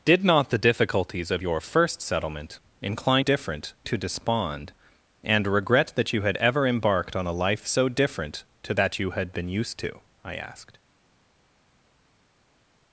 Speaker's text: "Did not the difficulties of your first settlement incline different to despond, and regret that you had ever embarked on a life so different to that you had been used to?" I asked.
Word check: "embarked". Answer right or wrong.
right